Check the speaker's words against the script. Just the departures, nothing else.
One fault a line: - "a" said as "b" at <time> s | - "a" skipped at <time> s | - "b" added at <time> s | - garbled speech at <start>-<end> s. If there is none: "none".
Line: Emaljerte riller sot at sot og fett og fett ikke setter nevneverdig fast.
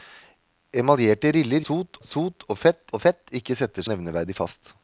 none